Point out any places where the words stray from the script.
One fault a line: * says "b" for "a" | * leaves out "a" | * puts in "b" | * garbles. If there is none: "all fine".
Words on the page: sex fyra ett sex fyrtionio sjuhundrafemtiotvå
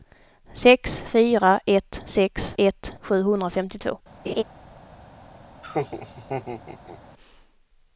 * says "ett" for "fyrtionio"